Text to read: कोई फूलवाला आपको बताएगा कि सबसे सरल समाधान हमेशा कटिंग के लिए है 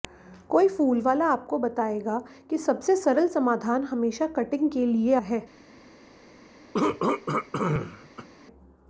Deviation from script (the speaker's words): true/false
false